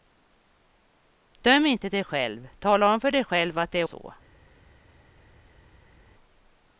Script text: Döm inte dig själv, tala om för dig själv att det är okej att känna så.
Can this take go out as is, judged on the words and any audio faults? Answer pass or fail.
fail